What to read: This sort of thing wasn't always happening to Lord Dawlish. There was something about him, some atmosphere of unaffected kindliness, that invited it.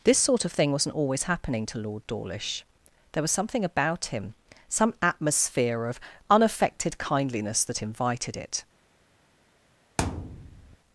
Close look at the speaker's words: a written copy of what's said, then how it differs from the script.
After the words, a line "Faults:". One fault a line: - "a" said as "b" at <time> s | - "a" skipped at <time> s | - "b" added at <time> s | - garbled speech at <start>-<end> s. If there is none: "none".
This sort of thing wasn't always happening to Lord Dawlish. There was something about him, some atmosphere of unaffected kindliness, that invited it.
Faults:
none